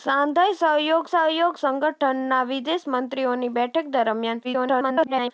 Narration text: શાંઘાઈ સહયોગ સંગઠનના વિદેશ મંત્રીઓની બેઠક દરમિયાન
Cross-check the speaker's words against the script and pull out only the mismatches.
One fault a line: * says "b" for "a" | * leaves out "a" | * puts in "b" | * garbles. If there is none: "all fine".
* puts in "સહયોગ"
* garbles